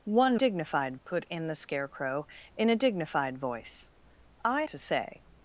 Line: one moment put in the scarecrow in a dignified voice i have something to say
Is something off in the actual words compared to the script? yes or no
yes